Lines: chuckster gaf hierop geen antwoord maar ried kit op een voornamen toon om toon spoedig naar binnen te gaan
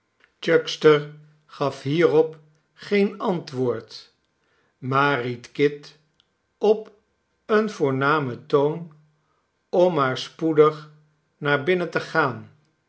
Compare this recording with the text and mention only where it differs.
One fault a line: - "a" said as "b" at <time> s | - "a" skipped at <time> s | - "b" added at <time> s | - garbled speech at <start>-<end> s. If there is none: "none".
- "toon" said as "maar" at 9.9 s